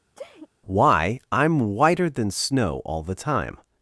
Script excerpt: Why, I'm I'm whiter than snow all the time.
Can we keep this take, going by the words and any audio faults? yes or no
no